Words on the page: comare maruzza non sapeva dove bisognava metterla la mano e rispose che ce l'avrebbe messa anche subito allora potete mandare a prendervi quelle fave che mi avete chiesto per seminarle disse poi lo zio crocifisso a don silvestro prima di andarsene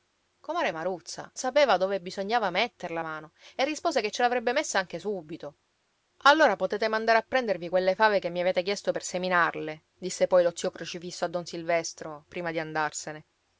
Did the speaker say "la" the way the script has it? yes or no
no